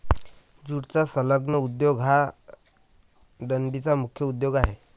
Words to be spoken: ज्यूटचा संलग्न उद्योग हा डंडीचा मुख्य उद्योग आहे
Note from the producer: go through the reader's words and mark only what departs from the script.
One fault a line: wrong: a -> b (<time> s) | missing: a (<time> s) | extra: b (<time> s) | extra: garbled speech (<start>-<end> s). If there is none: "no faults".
no faults